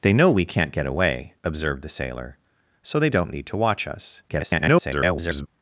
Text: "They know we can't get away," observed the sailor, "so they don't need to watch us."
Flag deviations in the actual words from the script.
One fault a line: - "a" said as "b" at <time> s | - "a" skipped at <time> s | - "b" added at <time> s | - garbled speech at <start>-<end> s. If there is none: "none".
- garbled speech at 4.3-5.5 s